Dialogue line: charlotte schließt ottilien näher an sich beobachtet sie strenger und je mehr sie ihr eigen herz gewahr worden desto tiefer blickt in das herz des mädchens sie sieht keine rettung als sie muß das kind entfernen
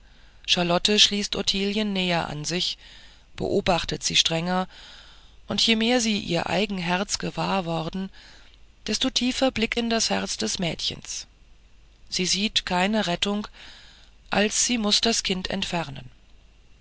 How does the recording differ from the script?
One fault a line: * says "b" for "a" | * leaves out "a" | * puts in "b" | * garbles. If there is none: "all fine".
all fine